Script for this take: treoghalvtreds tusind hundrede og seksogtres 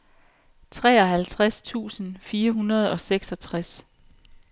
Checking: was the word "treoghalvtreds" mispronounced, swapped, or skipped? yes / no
no